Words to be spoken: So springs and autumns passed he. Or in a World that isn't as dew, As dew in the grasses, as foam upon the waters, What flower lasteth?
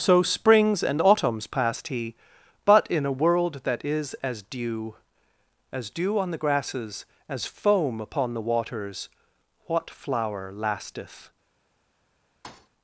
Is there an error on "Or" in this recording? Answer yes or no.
yes